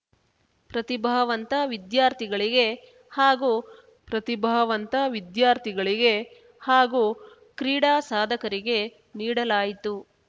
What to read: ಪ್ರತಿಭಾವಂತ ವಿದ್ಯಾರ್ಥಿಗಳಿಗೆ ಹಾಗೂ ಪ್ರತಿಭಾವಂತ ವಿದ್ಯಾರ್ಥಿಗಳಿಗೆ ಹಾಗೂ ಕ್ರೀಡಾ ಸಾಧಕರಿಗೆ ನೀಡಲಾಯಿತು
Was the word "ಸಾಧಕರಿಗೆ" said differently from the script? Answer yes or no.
no